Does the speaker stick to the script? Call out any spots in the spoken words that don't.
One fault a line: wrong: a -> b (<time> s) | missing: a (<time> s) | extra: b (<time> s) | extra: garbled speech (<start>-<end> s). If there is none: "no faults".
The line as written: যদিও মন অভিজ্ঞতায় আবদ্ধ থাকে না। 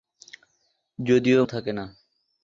missing: মন অভিজ্ঞতায় আবদ্ধ (1.4 s)